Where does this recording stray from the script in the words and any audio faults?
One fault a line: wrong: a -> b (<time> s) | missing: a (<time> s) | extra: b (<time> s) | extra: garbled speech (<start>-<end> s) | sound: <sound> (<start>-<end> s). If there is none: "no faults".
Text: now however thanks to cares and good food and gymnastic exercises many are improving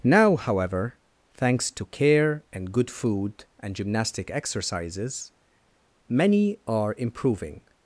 wrong: cares -> care (1.9 s)